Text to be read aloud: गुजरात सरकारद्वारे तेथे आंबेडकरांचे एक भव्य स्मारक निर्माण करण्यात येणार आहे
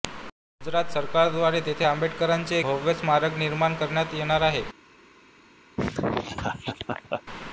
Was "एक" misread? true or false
true